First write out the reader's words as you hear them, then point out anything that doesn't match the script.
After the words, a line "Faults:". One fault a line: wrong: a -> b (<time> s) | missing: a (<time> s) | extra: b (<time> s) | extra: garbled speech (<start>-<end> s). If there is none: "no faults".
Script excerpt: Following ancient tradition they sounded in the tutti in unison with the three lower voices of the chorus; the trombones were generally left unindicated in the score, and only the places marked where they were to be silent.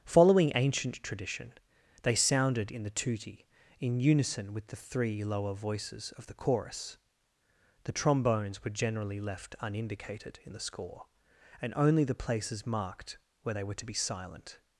Following ancient tradition they sounded in the tutti in unison with the three lower voices of the chorus; the trombones were generally left unindicated in the score, and only the places marked where they were to be silent.
Faults:
no faults